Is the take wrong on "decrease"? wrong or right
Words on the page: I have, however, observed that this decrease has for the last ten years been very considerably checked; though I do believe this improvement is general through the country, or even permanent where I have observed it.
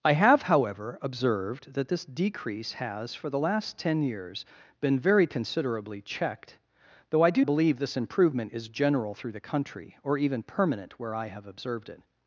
right